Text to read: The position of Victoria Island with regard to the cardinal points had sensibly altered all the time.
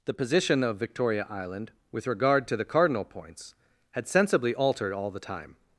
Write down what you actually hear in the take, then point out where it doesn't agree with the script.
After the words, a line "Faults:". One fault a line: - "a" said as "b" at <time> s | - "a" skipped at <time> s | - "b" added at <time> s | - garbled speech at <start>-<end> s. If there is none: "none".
The position of Victoria Island with regard to the cardinal points had sensibly altered all the time.
Faults:
none